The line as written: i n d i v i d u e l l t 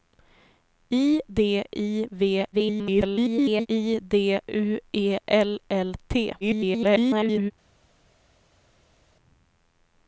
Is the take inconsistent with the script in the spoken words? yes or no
yes